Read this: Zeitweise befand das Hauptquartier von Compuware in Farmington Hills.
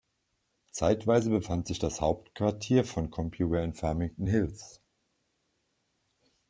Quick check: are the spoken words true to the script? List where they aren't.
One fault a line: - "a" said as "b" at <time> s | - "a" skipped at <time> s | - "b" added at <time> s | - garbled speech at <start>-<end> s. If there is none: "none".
- "sich" added at 1.7 s